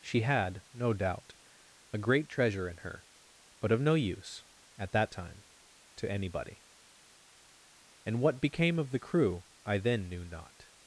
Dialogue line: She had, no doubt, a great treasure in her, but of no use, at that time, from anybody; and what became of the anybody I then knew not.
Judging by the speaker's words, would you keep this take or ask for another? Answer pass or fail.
fail